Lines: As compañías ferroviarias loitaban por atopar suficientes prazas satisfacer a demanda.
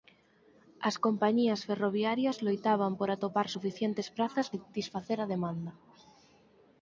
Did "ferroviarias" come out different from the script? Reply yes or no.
no